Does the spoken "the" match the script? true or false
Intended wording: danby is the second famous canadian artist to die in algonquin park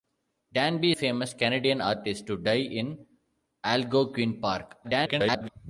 false